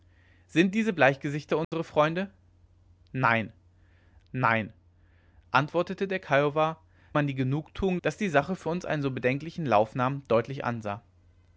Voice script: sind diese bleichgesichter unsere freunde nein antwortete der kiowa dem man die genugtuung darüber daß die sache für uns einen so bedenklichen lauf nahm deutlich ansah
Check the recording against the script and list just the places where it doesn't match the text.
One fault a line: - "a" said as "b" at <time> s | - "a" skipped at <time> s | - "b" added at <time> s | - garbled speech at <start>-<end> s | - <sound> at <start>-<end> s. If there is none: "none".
- dropout at 1.6-1.7 s
- "nein" added at 4.3 s
- "dem" skipped at 6.8 s
- "darüber" skipped at 8.0 s